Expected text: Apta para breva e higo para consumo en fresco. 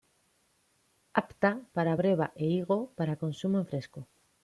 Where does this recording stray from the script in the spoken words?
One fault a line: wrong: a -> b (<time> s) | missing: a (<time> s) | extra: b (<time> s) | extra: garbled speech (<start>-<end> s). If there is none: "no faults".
no faults